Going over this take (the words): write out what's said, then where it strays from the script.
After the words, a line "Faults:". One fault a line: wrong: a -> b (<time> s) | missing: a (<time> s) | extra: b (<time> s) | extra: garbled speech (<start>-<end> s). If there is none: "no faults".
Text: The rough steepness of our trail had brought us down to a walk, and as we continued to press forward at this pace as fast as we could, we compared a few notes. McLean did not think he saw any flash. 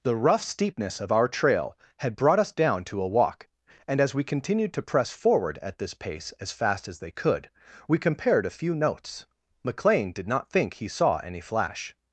The rough steepness of our trail had brought us down to a walk, and as we continued to press forward at this pace as fast as they could, we compared a few notes. McLean did not think he saw any flash.
Faults:
wrong: we -> they (7.0 s)